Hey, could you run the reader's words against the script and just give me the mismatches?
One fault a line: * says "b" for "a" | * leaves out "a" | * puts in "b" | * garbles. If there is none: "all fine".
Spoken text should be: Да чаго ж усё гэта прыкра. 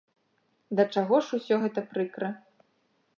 all fine